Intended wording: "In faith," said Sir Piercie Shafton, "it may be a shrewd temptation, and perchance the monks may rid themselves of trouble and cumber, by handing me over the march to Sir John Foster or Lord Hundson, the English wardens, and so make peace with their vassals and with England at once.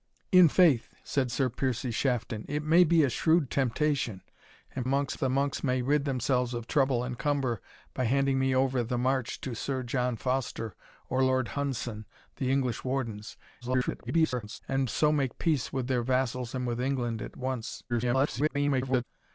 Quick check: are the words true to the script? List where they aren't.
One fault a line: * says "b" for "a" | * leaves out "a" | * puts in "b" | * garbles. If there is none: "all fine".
* says "monks" for "perchance"
* garbles
* garbles